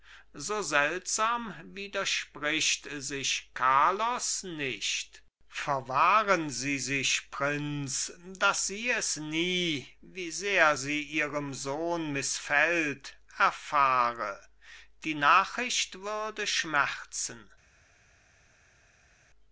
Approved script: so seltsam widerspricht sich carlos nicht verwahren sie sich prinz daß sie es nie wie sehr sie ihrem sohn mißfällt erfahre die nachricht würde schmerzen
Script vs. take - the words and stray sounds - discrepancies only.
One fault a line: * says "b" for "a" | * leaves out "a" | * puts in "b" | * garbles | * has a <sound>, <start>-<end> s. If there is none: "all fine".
all fine